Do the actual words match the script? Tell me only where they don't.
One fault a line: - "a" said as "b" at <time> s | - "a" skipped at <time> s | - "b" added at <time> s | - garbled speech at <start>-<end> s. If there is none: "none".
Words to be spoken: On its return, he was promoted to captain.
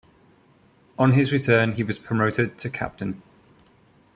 - "its" said as "his" at 1.1 s